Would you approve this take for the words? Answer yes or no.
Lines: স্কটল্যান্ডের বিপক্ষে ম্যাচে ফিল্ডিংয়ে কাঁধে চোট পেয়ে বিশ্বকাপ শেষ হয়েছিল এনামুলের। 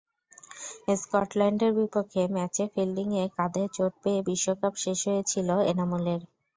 yes